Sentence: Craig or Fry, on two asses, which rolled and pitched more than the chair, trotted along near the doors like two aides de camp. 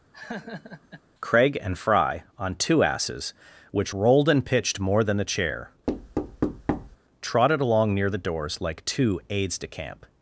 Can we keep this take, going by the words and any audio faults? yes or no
no